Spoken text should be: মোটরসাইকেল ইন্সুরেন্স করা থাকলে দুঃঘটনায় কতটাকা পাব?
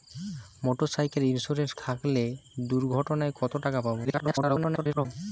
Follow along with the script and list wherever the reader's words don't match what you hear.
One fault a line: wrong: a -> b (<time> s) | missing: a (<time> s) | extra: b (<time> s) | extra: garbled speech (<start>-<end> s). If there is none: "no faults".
missing: করা (1.7 s)
extra: garbled speech (4.0-5.1 s)